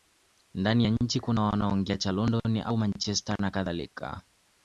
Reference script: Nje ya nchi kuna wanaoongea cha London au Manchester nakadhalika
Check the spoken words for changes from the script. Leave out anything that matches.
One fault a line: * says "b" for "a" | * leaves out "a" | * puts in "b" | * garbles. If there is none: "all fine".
* says "Ndani" for "Nje"